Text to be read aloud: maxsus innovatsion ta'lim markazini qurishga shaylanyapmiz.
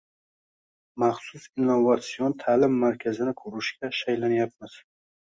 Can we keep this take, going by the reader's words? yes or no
yes